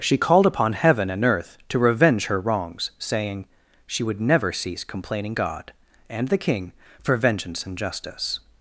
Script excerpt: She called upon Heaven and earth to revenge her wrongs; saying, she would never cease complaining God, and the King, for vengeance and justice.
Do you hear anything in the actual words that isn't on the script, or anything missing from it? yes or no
no